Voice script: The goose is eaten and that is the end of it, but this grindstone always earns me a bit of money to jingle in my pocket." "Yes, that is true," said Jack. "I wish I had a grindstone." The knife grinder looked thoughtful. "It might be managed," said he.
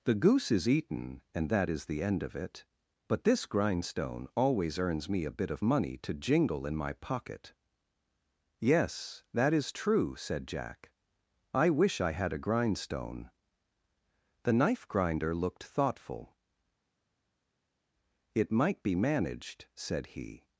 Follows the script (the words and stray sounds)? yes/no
yes